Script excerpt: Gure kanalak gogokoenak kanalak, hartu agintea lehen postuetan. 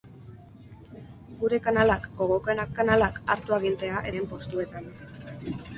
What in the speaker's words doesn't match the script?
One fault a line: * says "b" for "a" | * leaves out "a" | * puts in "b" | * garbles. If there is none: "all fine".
all fine